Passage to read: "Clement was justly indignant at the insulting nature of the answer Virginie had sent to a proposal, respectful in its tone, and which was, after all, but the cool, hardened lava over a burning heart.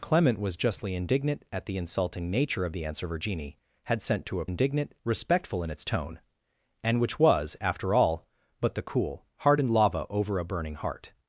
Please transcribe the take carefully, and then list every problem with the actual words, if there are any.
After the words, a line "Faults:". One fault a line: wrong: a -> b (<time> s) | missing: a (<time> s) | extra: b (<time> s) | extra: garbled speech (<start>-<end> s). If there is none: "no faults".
"Clement was justly indignant at the insulting nature of the answer Virginie had sent to a indignant, respectful in its tone, and which was, after all, but the cool, hardened lava over a burning heart.
Faults:
wrong: proposal -> indignant (4.4 s)